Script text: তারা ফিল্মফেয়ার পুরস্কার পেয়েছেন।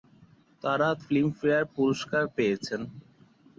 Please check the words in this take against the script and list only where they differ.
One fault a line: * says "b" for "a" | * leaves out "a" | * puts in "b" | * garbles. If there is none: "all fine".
all fine